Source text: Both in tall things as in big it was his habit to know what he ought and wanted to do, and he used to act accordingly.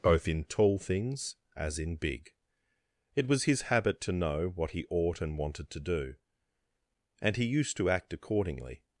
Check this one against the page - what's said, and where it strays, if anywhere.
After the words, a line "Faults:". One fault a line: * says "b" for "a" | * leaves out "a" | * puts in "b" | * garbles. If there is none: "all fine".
Both in tall things as in big it was his habit to know what he ought and wanted to do, and he used to act accordingly.
Faults:
all fine